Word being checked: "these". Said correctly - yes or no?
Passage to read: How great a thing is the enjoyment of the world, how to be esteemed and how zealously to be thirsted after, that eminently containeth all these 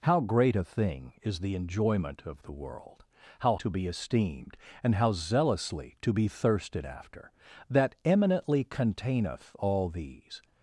yes